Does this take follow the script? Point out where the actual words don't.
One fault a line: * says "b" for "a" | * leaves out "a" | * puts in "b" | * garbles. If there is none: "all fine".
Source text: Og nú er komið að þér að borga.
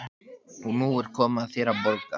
all fine